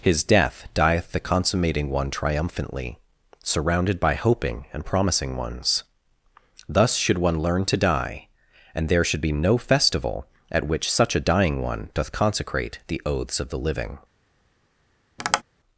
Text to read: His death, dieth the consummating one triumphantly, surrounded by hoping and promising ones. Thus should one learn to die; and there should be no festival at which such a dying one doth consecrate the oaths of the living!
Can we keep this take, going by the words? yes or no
yes